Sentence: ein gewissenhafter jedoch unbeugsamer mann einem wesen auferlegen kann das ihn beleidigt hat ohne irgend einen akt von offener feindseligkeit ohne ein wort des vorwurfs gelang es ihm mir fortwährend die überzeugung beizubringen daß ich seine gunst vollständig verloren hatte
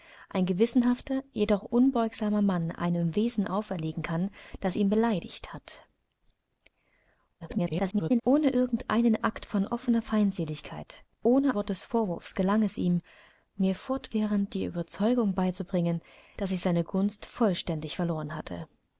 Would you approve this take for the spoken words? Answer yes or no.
no